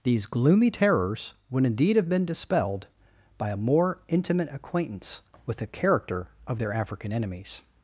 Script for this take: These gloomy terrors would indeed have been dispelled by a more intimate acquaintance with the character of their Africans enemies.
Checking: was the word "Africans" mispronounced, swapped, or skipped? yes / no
yes